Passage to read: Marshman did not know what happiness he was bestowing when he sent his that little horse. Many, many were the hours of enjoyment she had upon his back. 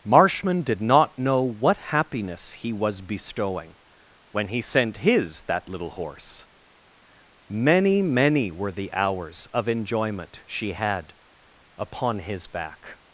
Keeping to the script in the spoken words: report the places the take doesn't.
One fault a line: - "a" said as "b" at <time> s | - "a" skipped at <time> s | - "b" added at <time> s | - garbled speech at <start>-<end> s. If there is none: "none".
none